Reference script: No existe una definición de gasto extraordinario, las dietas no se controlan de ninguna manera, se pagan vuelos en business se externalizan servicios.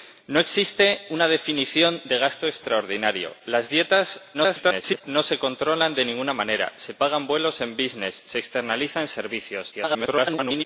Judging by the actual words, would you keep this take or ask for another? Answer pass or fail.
fail